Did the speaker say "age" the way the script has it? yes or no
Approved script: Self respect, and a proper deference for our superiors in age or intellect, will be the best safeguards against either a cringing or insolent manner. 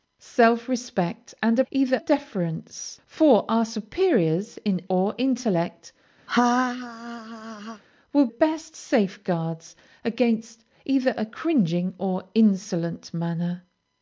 no